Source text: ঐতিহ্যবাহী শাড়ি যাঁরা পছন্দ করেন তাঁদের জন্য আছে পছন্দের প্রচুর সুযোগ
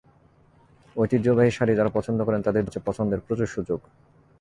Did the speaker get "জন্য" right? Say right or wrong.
wrong